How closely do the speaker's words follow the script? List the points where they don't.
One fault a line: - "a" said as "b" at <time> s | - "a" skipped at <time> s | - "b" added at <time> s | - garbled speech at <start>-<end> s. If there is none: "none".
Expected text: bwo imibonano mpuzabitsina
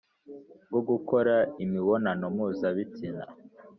- "gukora" added at 0.9 s